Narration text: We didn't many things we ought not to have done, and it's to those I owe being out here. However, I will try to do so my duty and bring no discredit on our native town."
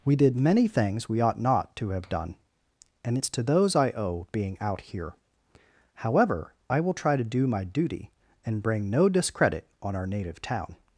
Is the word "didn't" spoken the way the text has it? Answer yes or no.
no